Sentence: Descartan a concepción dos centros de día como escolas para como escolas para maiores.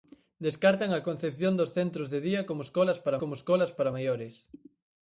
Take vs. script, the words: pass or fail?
pass